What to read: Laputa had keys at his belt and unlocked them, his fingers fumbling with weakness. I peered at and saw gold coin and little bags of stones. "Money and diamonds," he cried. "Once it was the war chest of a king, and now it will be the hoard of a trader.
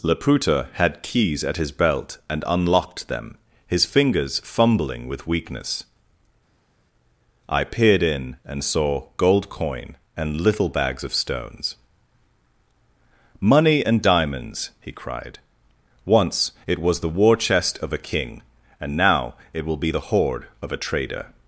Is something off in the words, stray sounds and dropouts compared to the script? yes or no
yes